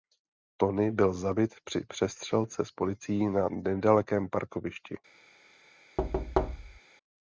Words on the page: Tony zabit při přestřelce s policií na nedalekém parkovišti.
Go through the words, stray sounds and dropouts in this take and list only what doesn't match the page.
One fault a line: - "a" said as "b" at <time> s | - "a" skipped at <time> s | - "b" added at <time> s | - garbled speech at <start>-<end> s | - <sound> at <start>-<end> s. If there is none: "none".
- "byl" added at 0.9 s
- thud at 6.0-6.8 s